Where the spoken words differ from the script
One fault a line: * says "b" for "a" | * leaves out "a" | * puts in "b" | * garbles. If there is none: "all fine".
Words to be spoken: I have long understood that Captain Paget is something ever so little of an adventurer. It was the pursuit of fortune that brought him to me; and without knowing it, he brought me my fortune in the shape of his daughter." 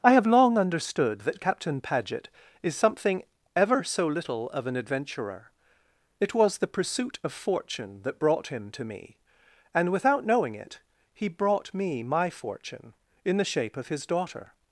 all fine